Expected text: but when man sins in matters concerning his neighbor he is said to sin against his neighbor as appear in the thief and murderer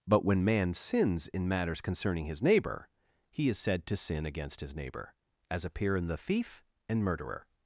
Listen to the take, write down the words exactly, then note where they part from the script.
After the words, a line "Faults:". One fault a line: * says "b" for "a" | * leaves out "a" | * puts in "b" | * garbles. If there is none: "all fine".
but when man sins in matters concerning his neighbor he is said to sin against his neighbor as appear in the thief and murderer
Faults:
all fine